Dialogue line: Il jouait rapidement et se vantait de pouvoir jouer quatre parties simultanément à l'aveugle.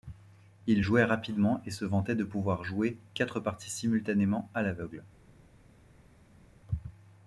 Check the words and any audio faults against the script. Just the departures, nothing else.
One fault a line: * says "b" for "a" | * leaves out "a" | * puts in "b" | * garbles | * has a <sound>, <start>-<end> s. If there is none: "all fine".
all fine